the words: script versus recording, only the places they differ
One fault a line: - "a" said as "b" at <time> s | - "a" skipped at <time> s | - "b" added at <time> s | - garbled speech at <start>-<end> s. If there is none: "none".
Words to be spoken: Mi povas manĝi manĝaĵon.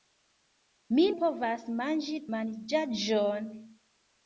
none